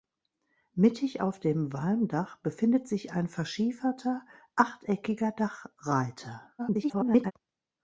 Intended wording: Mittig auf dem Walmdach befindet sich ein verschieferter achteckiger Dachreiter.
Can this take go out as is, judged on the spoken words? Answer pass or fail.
fail